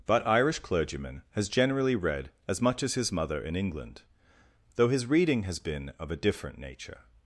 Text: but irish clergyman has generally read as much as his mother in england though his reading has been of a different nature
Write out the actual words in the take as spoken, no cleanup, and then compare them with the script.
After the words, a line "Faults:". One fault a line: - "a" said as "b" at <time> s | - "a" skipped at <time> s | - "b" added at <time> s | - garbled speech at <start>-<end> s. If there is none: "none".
but irish clergyman has generally read as much as his mother in england though his reading has been of a different nature
Faults:
none